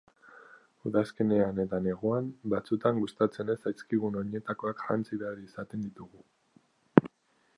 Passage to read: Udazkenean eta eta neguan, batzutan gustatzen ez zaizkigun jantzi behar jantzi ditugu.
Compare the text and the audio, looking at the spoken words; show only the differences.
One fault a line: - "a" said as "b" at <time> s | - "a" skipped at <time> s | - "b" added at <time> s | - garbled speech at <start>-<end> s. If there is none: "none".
- "eta" skipped at 1.8 s
- "oinetakoak" added at 4.2 s
- "jantzi" said as "izaten" at 5.5 s